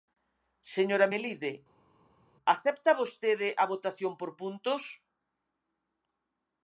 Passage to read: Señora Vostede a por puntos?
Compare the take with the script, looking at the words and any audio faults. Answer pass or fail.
fail